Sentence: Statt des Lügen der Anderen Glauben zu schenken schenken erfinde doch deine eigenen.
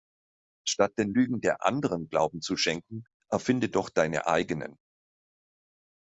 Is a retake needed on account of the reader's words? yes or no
yes